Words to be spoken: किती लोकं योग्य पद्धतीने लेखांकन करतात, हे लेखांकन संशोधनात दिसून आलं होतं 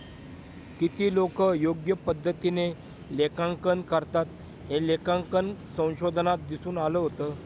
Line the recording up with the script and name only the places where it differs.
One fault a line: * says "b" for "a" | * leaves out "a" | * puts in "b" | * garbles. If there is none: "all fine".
all fine